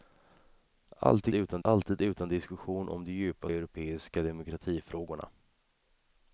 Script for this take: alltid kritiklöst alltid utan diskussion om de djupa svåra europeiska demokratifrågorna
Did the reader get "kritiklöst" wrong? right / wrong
wrong